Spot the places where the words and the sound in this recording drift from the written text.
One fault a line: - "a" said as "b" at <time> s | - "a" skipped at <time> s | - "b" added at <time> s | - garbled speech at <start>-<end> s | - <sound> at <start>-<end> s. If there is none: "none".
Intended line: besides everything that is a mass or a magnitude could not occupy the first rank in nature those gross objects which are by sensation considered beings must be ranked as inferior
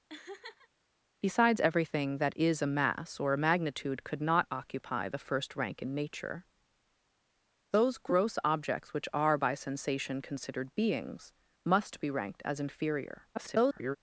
- laugh at 0.1-0.7 s
- garbled speech at 13.3-14.0 s